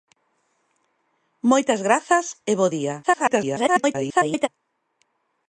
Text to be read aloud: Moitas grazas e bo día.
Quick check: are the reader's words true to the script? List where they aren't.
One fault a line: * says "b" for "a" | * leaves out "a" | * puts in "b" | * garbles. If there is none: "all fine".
* garbles